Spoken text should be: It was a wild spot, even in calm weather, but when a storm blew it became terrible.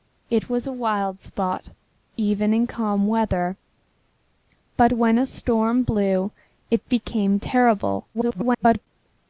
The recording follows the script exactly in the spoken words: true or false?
false